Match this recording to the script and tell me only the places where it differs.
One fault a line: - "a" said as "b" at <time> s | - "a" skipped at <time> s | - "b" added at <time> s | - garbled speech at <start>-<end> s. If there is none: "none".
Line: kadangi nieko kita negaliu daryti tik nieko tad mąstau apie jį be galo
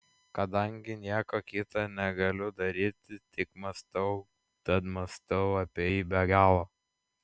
- "nieko" said as "mąstau" at 3.6 s